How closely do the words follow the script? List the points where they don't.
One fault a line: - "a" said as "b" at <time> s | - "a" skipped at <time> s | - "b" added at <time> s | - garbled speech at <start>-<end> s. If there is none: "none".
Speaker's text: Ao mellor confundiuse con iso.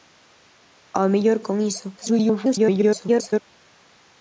- "confundiuse" skipped at 1.4 s
- garbled speech at 2.0-3.4 s